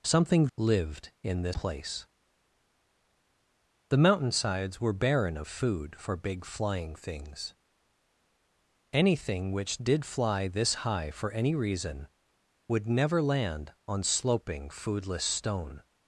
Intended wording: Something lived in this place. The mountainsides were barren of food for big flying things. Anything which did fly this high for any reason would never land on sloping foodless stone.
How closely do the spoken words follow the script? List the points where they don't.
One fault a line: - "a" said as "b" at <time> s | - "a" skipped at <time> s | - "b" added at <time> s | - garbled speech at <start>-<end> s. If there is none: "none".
none